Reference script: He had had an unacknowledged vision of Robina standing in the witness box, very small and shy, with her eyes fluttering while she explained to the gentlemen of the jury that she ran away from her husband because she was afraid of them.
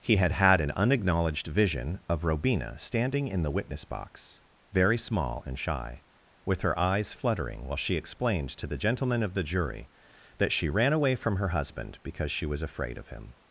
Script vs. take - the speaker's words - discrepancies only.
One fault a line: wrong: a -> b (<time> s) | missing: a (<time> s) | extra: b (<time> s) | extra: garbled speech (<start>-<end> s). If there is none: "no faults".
wrong: them -> him (13.1 s)